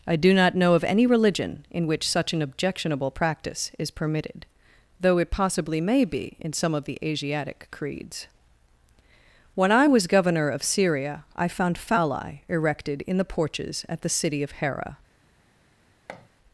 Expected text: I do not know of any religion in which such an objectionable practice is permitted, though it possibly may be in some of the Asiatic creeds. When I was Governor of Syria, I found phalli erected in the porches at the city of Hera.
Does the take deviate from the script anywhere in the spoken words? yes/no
no